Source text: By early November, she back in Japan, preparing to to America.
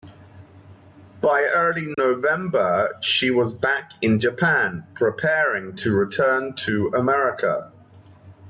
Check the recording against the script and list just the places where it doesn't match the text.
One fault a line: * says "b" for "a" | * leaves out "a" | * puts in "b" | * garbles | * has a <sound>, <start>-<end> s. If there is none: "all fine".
* has a dropout, 1.9-2.0 s
* puts in "was"
* puts in "return"